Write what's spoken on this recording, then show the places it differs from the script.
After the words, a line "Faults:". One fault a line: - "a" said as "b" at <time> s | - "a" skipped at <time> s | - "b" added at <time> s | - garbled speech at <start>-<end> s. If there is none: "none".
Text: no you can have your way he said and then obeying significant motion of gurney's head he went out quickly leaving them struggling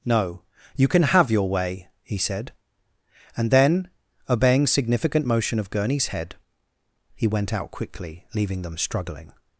no you can have your way he said and then obeying significant motion of gurney's head he went out quickly leaving them struggling
Faults:
none